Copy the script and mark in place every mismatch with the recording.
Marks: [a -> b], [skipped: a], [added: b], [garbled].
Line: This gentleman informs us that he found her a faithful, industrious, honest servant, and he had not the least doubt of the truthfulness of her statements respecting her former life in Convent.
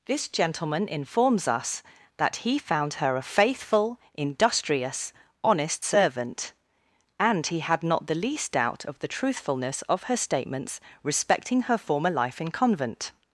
This gentleman informs us that he found her a faithful, industrious, honest servant, and he had not the least doubt of the truthfulness of her statements respecting her former life in Convent.